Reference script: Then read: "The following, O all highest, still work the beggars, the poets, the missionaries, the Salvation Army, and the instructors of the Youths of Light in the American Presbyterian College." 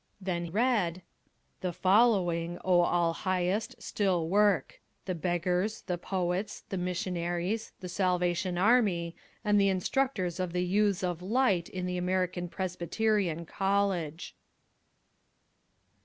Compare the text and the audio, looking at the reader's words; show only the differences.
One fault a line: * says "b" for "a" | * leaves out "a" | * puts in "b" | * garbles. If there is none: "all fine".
all fine